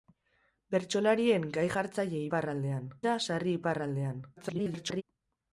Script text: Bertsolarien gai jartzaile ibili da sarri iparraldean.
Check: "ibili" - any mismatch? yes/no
yes